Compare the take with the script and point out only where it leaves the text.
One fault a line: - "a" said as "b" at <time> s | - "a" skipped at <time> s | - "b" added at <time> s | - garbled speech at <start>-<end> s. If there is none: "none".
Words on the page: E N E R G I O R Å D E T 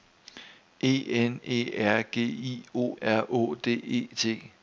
none